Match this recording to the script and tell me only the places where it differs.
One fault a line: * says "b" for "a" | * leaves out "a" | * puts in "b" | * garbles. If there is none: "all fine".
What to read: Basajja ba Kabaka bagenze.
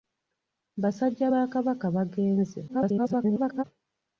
* garbles